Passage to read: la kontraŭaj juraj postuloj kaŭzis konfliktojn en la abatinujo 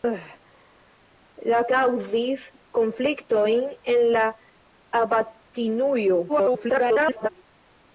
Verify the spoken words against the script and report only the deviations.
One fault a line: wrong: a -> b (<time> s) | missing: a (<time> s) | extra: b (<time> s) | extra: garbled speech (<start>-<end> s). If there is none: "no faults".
missing: kontraŭaj juraj postuloj (1.6 s)
extra: garbled speech (6.3-7.3 s)